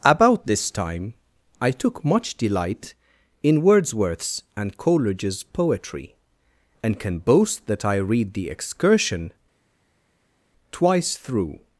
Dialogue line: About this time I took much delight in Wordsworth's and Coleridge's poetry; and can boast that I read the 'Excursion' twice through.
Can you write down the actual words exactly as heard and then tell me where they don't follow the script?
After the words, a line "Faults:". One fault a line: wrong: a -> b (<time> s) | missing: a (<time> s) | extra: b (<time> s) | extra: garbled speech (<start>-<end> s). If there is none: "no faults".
About this time I took much delight in Wordsworth's and Coleridge's poetry; and can boast that I read the 'Excursion' twice through.
Faults:
no faults